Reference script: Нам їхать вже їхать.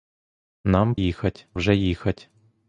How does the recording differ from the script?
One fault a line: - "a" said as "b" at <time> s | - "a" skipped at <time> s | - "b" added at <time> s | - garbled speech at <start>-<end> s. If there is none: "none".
none